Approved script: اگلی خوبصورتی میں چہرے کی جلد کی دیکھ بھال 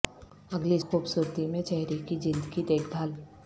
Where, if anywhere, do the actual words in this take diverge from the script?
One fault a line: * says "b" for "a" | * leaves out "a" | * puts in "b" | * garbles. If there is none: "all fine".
all fine